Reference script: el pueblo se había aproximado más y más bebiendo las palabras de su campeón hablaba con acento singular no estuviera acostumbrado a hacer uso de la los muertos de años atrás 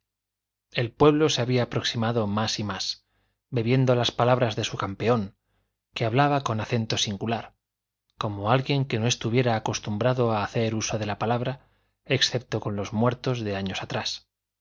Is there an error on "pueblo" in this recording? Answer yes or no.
no